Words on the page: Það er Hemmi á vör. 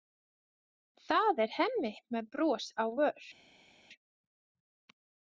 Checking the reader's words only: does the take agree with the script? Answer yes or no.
no